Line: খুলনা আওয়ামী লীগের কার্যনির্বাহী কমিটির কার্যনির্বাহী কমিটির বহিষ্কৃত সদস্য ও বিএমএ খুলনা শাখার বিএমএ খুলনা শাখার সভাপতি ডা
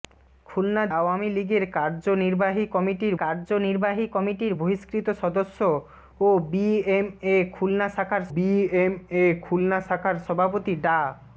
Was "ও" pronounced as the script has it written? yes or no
yes